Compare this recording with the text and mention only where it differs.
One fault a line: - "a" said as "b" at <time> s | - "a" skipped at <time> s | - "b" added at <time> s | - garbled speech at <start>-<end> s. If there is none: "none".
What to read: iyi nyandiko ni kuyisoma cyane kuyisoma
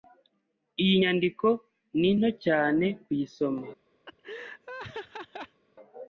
- "kuyisoma" said as "nto" at 2.2 s